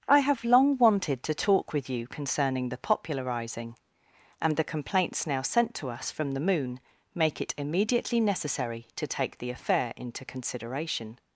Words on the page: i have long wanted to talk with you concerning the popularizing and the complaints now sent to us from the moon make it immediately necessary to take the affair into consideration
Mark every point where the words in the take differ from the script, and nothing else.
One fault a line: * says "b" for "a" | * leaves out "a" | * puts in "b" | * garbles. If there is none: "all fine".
all fine